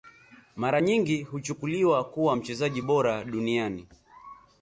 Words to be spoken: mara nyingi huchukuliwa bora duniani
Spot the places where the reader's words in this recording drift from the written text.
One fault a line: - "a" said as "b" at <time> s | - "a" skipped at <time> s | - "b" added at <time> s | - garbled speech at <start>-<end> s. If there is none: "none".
- "kuwa mchezaji" added at 2.0 s